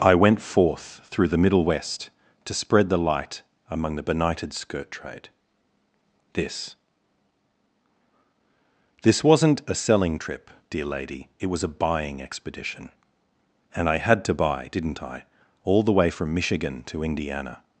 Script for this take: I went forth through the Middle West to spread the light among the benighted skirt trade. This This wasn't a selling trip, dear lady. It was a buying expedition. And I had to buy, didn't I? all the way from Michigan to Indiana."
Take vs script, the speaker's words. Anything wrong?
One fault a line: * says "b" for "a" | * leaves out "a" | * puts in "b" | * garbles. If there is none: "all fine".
all fine